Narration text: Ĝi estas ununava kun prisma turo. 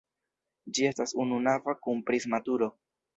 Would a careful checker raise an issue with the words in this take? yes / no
no